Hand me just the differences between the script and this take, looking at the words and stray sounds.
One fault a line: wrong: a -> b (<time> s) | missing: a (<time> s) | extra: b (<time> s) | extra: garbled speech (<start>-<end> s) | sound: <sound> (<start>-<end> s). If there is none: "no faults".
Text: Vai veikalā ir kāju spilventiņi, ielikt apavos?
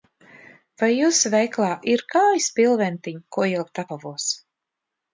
extra: jūsu (0.9 s)
extra: ko (3.4 s)